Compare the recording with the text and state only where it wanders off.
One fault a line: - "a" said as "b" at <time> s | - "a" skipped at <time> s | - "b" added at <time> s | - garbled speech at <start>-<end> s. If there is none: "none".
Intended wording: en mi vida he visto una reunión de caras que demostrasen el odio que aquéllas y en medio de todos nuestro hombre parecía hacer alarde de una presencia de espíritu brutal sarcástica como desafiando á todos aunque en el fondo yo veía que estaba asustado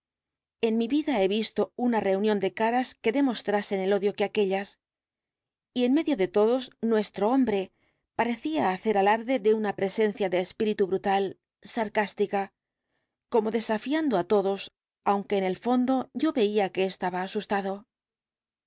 none